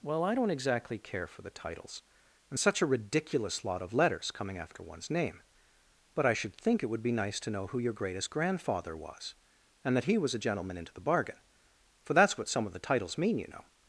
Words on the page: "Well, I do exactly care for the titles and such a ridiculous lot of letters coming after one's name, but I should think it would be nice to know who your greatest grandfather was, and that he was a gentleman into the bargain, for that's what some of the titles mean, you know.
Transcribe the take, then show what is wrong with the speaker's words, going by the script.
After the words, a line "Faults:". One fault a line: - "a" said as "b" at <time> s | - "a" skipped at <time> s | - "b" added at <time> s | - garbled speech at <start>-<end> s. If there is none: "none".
"Well, I don't exactly care for the titles and such a ridiculous lot of letters coming after one's name, but I should think it would be nice to know who your greatest grandfather was, and that he was a gentleman into the bargain, for that's what some of the titles mean, you know.
Faults:
- "do" said as "don't" at 0.3 s